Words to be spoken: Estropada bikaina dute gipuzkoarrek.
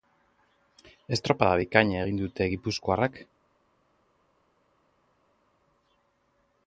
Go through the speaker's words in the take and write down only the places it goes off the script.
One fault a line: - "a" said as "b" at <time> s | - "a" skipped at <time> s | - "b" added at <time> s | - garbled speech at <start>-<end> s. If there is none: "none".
- "egin" added at 2.0 s